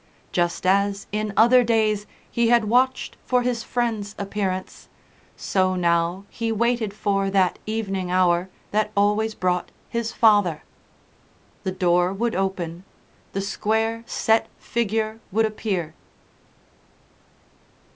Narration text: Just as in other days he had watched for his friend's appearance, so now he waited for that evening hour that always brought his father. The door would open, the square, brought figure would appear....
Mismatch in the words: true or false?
true